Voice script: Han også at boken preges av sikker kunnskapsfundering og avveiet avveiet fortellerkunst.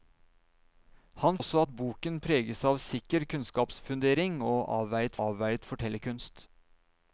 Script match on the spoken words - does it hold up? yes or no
yes